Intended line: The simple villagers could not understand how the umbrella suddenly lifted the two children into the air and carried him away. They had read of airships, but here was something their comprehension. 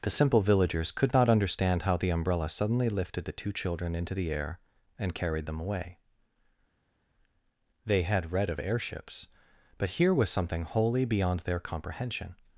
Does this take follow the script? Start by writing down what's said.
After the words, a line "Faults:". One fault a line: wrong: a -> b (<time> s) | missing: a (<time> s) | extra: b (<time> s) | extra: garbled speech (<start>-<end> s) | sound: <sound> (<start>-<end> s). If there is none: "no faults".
The simple villagers could not understand how the umbrella suddenly lifted the two children into the air and carried them away. They had read of airships, but here was something wholly beyond their comprehension.
Faults:
wrong: him -> them (5.5 s)
extra: wholly beyond (10.6 s)